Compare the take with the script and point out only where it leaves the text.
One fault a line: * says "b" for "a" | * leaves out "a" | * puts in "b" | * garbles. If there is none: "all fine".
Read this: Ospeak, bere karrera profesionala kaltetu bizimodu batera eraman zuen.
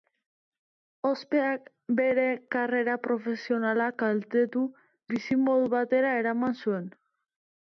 all fine